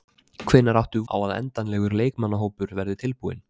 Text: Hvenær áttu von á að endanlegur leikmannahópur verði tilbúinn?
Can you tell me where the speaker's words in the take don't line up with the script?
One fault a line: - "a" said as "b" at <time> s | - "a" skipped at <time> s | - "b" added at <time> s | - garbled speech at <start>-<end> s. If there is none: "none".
- "von" skipped at 1.0 s